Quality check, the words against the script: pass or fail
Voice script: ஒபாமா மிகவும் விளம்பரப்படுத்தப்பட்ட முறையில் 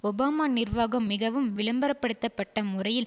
fail